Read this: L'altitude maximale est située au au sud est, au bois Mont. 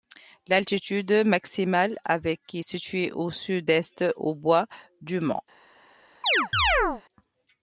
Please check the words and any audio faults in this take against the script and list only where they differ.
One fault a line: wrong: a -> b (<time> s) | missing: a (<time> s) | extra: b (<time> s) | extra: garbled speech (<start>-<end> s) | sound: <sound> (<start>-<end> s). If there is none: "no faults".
extra: avec (2.0 s)
missing: au (3.3 s)
extra: du (5.0 s)
sound: chirp (6.2-7.0 s)